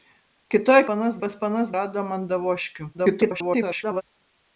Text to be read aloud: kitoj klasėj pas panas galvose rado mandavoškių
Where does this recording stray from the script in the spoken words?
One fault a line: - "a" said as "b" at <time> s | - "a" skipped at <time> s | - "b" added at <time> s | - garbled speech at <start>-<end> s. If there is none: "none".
- "klasėj" said as "panas" at 0.9 s
- "galvose" skipped at 1.7 s
- garbled speech at 2.9-4.0 s